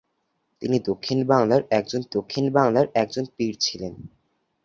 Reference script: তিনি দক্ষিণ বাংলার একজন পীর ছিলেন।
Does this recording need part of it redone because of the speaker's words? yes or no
yes